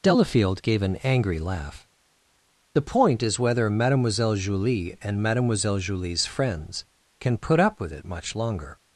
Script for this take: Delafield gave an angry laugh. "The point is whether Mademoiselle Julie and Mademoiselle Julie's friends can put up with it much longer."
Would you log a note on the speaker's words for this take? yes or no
no